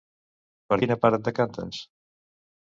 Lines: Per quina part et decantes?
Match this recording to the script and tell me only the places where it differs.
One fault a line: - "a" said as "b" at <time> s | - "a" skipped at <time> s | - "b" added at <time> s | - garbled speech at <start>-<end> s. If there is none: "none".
none